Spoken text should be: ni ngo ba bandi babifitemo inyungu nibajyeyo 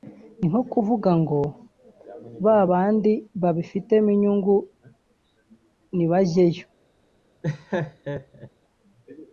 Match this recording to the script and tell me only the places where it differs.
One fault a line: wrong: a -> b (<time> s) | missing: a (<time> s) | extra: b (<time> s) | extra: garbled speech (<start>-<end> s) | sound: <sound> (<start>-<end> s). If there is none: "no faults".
extra: nko kuvuga (0.5 s)
sound: laugh (7.4-8.5 s)